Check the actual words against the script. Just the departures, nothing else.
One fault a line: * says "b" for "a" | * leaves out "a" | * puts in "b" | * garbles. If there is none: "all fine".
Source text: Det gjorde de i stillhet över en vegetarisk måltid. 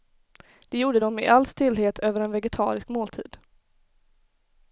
* puts in "all"